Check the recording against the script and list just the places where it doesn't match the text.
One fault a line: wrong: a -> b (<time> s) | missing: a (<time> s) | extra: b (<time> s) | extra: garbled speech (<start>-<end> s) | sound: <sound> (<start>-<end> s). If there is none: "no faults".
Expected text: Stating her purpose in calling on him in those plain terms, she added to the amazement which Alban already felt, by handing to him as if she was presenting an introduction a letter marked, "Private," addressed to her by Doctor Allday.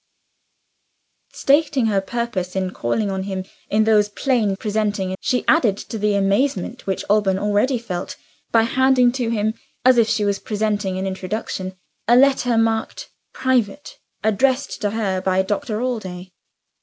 wrong: terms -> presenting (4.5 s)